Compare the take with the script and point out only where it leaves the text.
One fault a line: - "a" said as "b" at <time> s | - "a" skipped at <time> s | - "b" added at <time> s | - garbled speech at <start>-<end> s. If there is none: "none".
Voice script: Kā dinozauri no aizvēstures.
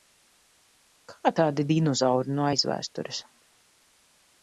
- "tādi" added at 1.4 s